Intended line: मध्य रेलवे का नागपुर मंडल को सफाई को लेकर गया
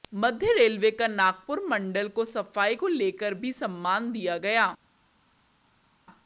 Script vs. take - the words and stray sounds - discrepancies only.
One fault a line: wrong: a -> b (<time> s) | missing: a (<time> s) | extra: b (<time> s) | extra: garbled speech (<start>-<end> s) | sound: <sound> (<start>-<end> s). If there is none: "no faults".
extra: भी सम्मान दिया (3.3 s)